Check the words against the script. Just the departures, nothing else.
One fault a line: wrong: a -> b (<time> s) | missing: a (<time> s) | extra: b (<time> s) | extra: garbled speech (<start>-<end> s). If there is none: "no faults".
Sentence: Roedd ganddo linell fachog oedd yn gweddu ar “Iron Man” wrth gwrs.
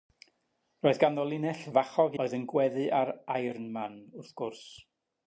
no faults